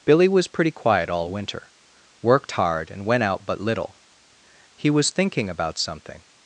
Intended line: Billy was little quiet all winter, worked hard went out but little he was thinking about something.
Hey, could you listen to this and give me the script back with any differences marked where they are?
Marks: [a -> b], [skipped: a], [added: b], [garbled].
Billy was [little -> pretty] quiet all winter, worked hard [added: and] went out but little he was thinking about something.